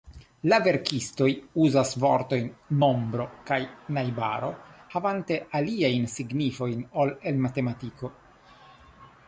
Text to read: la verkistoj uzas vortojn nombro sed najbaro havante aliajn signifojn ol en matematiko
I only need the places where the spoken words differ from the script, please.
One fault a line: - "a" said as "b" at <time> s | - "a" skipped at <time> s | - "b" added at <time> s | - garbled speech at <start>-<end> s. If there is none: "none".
- "sed" said as "kaj" at 3.5 s